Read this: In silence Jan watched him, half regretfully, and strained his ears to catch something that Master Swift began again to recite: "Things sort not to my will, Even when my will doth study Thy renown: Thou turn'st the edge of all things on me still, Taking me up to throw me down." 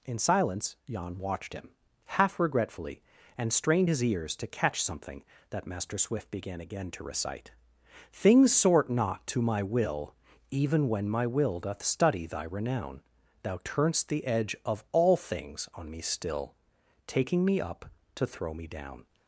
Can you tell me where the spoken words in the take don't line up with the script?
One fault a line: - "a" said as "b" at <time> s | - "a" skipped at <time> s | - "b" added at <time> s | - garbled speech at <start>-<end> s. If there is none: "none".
none